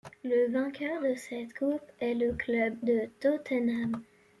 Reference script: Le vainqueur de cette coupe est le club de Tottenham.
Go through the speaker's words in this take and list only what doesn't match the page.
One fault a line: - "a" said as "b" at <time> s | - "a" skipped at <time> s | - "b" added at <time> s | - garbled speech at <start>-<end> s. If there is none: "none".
none